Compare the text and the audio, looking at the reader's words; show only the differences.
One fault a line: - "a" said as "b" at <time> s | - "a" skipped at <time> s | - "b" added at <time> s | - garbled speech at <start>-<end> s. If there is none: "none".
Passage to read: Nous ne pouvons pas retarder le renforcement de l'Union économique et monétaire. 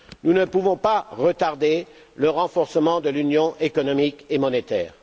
none